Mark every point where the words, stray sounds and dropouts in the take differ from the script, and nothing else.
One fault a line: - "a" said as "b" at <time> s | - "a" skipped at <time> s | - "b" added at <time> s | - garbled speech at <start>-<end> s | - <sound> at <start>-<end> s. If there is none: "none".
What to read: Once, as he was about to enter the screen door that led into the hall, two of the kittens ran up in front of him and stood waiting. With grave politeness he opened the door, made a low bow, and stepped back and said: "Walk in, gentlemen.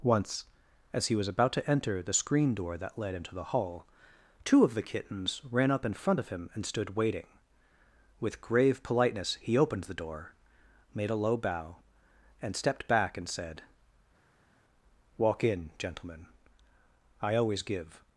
- "I always give" added at 17.2 s